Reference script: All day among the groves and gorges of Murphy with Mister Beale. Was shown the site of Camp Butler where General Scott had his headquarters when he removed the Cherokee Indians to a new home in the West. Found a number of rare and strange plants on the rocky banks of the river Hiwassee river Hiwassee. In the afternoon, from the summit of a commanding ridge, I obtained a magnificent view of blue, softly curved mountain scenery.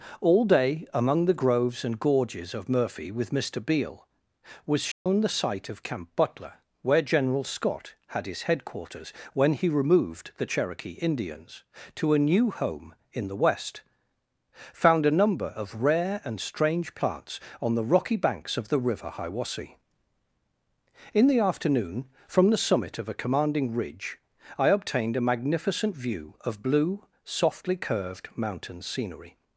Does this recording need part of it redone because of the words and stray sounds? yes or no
yes